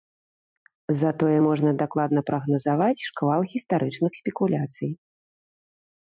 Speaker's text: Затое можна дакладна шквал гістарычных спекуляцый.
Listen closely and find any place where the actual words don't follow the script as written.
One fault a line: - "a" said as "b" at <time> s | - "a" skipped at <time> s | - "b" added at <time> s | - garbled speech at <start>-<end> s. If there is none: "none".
- "прагназаваць" added at 2.3 s